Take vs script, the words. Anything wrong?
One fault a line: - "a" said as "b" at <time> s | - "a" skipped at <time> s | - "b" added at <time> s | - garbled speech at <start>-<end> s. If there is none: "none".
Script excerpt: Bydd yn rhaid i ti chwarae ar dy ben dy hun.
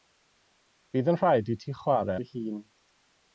- "ar dy ben" skipped at 2.2 s